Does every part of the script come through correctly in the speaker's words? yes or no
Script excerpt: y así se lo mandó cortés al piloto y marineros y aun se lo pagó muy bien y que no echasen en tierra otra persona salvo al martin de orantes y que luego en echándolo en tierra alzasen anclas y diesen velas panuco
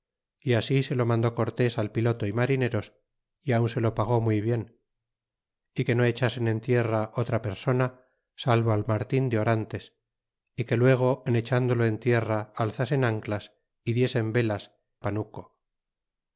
yes